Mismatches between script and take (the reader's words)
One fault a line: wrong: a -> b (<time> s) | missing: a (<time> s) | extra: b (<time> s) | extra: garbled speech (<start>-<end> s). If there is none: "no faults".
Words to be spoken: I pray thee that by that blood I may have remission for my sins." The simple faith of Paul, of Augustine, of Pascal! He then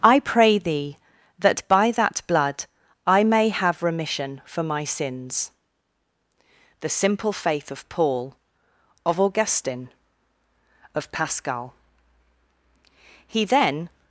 no faults